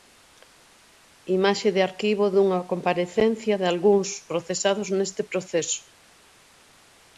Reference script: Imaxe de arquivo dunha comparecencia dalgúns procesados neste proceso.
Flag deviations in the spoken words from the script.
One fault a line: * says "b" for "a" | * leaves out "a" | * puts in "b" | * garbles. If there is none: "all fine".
all fine